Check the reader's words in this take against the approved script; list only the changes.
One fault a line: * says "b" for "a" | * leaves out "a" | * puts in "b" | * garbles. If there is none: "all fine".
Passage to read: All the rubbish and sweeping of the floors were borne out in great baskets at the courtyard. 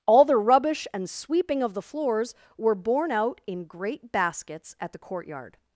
all fine